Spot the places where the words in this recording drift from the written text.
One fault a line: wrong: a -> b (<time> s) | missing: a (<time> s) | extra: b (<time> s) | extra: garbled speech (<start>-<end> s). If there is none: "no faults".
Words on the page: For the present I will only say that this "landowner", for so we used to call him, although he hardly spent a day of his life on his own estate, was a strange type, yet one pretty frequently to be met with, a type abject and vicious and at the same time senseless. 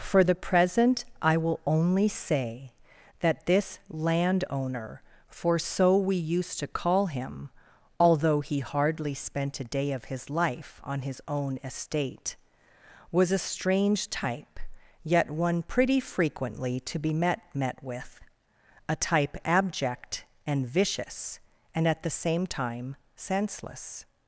extra: met (17.5 s)